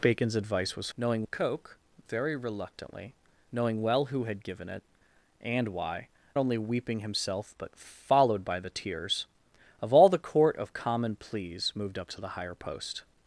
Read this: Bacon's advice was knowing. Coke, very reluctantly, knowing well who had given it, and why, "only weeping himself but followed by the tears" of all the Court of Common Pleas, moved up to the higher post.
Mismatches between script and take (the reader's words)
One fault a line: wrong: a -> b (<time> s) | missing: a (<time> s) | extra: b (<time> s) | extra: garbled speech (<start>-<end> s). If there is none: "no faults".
no faults